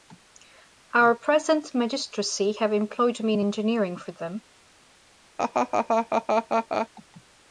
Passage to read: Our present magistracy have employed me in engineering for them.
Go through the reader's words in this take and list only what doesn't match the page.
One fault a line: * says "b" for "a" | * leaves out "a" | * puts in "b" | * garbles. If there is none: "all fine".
all fine